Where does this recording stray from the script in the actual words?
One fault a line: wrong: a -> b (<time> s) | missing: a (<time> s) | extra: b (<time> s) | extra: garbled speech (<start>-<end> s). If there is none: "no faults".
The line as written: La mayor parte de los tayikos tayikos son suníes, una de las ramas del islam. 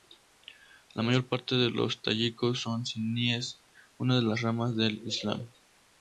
missing: tayikos (2.6 s)